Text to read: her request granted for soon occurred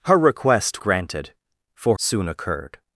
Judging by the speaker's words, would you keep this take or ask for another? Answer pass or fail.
pass